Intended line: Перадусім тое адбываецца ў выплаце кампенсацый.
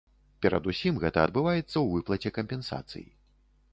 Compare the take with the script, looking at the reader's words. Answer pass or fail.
fail